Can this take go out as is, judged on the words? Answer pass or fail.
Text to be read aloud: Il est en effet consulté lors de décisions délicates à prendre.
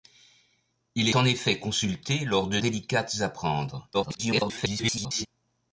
fail